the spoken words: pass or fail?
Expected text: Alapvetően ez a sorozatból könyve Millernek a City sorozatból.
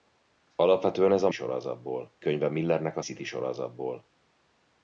pass